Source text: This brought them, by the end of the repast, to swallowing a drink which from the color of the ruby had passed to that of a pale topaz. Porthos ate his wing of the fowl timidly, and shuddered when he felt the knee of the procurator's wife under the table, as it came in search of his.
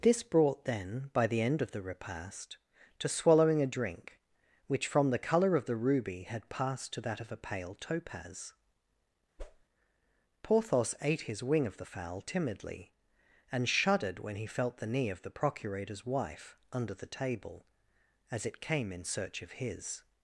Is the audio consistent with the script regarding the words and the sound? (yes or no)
no